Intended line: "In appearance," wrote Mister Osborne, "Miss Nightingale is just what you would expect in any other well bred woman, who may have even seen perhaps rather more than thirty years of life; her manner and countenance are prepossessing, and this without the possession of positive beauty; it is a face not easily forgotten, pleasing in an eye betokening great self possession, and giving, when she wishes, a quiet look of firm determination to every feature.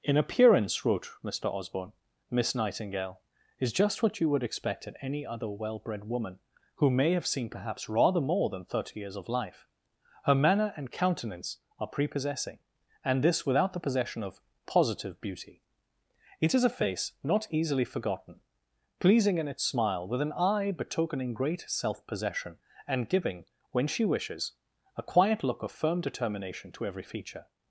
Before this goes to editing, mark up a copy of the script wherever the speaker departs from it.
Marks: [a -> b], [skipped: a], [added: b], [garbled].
"In appearance," wrote Mister Osborne, "Miss Nightingale is just what you would expect in any other well bred woman, who may have [skipped: even] seen perhaps rather more than thirty years of life; her manner and countenance are prepossessing, and this without the possession of positive beauty; it is a face not easily forgotten, pleasing in [added: its smile with] an eye betokening great self possession, and giving, when she wishes, a quiet look of firm determination to every feature.